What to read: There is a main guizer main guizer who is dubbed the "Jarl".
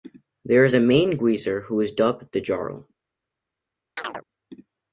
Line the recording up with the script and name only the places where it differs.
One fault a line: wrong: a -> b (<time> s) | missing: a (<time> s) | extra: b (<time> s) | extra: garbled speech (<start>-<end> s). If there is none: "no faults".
missing: main guizer (1.6 s)